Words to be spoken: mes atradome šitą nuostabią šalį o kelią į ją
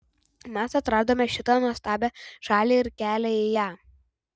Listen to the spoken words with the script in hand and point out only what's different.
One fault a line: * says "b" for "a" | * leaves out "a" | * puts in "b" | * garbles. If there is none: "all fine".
* says "ir" for "o"